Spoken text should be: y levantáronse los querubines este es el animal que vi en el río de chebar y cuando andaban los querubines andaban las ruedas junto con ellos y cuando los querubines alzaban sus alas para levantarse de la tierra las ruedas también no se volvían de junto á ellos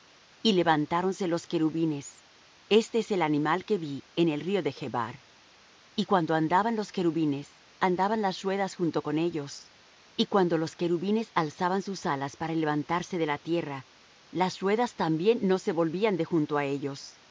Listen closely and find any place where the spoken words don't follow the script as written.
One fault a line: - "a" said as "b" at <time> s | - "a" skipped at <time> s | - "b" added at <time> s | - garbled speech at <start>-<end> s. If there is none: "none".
none